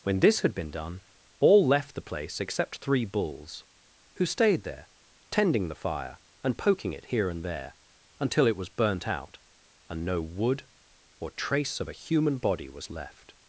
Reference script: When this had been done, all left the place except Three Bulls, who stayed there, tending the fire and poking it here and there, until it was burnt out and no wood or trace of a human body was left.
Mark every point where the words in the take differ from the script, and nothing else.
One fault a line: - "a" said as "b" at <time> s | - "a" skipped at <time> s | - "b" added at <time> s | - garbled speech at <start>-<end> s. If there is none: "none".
none